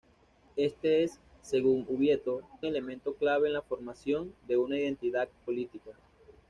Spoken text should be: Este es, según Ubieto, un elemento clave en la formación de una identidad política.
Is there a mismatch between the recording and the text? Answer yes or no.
yes